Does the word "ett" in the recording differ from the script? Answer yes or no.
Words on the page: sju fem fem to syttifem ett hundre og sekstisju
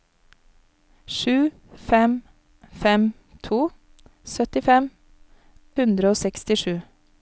yes